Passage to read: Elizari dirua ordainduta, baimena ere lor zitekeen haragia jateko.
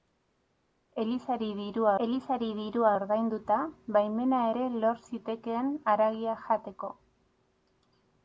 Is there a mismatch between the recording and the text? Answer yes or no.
yes